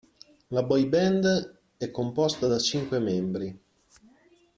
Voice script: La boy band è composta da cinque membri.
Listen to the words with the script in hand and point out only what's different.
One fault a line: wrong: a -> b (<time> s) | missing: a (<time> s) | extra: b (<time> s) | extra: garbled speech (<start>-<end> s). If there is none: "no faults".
no faults